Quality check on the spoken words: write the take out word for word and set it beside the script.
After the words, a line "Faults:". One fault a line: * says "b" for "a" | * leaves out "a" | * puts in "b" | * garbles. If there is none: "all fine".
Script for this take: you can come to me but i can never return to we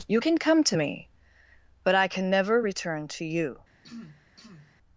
you can come to me but i can never return to you
Faults:
* says "you" for "we"